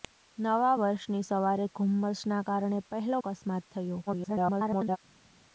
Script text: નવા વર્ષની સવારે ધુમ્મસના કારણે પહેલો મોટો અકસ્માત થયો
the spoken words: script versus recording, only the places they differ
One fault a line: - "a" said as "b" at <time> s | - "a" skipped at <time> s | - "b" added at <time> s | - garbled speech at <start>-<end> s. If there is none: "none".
- "મોટો" skipped at 3.2 s
- garbled speech at 4.1-5.0 s